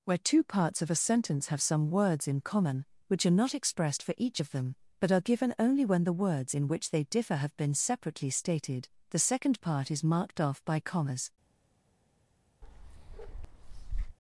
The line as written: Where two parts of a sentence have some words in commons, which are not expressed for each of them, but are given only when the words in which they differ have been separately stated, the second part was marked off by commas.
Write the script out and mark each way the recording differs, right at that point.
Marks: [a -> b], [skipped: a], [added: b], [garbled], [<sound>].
Where two parts of a sentence have some words in [commons, -> common] which are not expressed for each of them, but are given only when the words in which they differ have been separately stated, the second part [was -> is] marked off by commas. [bark]